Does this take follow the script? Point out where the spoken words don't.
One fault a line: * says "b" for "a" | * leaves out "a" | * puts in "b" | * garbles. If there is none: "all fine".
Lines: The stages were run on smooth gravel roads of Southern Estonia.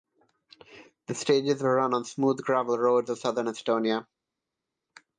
all fine